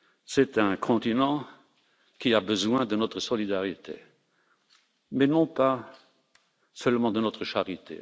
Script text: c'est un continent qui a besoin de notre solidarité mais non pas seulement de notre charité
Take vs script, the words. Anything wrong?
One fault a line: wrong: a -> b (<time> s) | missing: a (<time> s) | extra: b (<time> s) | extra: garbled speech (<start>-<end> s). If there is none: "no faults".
no faults